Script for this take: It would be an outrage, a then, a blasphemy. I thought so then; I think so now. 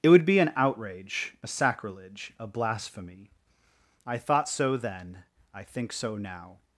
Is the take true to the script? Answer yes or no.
no